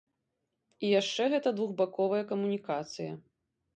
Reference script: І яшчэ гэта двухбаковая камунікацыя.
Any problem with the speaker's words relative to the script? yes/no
no